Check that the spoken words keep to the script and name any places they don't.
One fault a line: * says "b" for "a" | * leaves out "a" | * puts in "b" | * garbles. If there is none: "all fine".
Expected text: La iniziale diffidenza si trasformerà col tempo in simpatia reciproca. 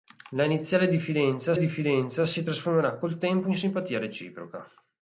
* puts in "diffidenza"